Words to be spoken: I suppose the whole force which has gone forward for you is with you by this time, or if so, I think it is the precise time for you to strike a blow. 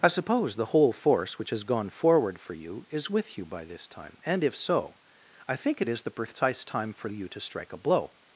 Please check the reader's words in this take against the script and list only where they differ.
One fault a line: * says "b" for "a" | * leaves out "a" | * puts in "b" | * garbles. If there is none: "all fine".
* says "and" for "or"